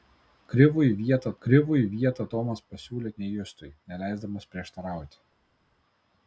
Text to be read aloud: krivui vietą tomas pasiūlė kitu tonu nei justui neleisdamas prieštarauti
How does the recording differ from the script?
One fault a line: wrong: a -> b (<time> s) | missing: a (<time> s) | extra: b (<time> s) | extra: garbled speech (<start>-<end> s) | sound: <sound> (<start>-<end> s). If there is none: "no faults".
extra: krivui vietą (1.4 s)
missing: kitu tonu (3.1 s)